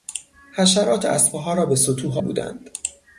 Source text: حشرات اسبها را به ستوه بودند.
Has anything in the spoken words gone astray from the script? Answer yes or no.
no